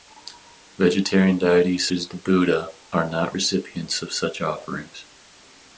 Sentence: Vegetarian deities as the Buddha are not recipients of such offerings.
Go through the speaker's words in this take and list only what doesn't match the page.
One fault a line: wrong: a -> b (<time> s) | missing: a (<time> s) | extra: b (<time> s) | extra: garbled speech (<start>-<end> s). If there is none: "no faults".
no faults